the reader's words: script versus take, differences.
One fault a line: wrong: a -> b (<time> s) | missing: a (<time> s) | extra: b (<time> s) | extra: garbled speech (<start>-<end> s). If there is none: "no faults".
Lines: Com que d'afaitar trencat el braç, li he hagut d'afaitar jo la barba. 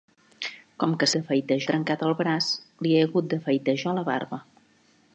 no faults